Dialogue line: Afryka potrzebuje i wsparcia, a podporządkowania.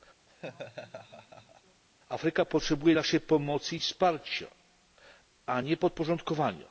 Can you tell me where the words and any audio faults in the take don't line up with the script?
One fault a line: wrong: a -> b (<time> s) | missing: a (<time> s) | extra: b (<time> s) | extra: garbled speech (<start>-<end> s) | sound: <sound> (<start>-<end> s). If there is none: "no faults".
sound: laugh (0.3-1.8 s)
extra: naszej pomocy (2.9 s)
extra: nie (5.6 s)